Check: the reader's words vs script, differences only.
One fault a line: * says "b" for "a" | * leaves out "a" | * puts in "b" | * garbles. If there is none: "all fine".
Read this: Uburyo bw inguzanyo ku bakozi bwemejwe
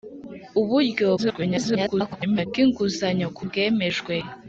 * garbles
* leaves out "bakozi"